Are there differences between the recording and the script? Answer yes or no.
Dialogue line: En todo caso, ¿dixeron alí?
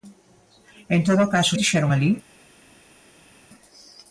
no